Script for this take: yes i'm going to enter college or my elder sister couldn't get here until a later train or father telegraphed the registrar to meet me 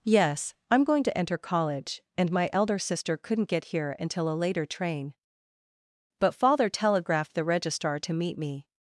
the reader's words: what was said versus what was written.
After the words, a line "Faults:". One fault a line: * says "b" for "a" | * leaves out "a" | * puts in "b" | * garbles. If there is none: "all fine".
yes i'm going to enter college and my elder sister couldn't get here until a later train but father telegraphed the registrar to meet me
Faults:
* says "and" for "or"
* says "but" for "or"